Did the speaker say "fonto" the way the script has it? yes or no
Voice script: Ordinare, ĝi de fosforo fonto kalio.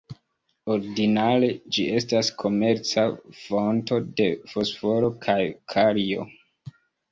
no